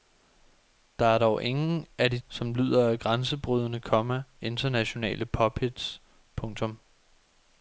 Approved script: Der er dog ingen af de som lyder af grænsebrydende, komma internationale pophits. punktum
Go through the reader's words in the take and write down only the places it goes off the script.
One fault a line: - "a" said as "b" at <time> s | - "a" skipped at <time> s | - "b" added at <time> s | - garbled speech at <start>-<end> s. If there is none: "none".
none